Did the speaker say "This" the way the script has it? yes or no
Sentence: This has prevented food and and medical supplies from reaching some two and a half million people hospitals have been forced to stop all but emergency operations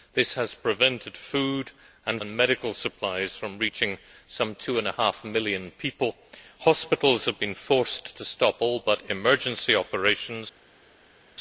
yes